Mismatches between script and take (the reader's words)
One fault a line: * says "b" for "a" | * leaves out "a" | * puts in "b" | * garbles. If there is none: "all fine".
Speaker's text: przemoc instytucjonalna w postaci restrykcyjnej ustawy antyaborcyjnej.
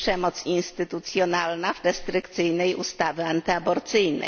* leaves out "postaci"